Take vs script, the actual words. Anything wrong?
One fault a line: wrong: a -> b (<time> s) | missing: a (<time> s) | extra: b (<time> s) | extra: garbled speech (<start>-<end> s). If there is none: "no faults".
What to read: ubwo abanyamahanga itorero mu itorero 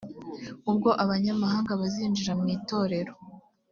wrong: itorero -> bazinjira (1.8 s)